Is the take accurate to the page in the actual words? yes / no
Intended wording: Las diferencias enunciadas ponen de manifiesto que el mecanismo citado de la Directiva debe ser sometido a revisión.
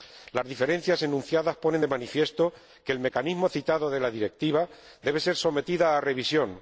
yes